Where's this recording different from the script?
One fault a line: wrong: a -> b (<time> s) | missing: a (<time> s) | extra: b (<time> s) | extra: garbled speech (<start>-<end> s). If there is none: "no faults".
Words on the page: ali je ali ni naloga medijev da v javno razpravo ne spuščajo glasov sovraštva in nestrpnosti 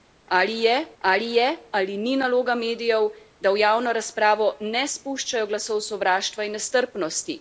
extra: je ali (1.3 s)